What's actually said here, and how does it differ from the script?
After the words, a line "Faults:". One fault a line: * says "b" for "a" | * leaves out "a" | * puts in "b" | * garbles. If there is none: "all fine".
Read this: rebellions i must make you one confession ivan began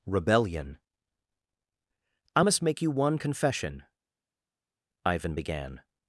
rebellion i must make you one confession ivan began
Faults:
* says "rebellion" for "rebellions"